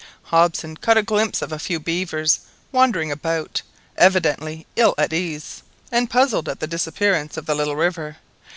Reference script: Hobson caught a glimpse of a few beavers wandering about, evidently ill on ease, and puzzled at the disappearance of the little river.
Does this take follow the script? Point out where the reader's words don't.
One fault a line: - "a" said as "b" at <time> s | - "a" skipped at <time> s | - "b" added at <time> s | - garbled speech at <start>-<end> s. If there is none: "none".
- "on" said as "at" at 5.0 s